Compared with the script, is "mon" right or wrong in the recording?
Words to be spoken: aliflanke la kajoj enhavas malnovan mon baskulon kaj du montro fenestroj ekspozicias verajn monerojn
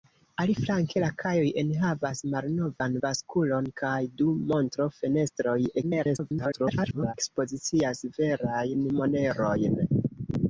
wrong